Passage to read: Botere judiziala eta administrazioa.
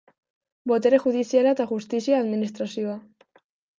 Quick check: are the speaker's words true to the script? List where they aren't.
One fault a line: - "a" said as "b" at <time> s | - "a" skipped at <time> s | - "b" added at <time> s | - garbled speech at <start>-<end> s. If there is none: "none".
- "justizia" added at 1.7 s